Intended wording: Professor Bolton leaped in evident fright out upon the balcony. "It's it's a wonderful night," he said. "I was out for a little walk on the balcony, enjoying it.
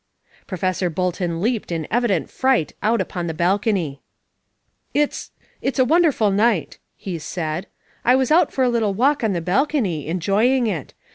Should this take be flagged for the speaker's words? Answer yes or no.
no